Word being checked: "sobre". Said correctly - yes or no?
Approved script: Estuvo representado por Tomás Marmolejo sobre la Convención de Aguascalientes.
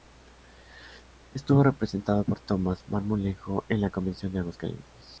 no